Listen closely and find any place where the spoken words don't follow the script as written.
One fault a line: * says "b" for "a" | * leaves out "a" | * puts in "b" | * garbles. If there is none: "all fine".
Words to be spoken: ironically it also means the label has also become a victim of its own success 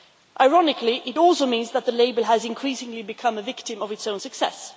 * puts in "that"
* says "increasingly" for "also"